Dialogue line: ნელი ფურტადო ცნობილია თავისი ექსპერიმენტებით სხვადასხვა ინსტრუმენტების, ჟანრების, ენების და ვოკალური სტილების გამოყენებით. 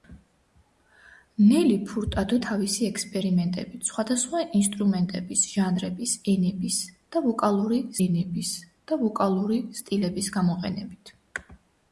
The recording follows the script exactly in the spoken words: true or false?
false